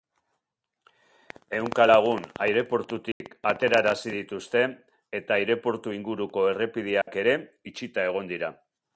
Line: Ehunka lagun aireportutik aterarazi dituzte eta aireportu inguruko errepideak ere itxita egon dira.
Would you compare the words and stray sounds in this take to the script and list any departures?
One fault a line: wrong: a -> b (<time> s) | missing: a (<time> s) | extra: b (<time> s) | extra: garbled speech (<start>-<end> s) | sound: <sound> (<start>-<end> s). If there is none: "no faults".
sound: dropout (3.1-3.2 s)
sound: dropout (7.0-7.1 s)